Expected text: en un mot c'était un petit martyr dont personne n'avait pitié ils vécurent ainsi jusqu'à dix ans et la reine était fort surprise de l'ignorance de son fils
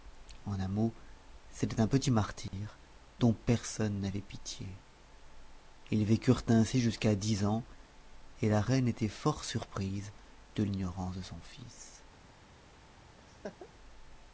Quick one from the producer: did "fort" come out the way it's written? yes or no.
yes